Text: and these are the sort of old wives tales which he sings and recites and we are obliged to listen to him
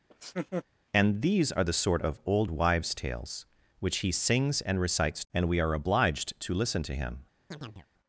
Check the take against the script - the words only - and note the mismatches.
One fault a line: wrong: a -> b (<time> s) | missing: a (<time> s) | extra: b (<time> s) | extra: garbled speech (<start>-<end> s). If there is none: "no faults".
no faults